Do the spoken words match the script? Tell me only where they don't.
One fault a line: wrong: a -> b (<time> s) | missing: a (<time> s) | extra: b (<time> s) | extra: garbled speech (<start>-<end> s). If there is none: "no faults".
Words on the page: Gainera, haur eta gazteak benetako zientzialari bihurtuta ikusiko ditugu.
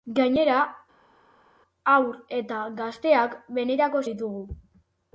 missing: zientzialari bihurtuta ikusiko (4.0 s)